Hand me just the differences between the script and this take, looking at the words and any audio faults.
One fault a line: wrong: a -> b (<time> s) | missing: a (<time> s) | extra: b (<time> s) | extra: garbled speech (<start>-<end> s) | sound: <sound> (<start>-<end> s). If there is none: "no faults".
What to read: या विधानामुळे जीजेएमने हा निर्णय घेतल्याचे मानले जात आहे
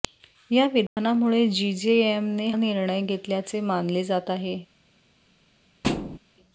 sound: dropout (0.9-1.0 s)
missing: हा (2.5 s)
sound: thud (5.8-6.2 s)